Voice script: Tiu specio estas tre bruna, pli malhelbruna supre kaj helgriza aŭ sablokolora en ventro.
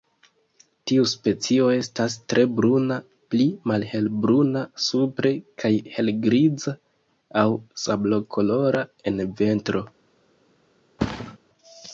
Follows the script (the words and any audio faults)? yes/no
no